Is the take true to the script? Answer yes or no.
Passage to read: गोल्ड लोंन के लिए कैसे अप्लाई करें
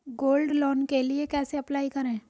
yes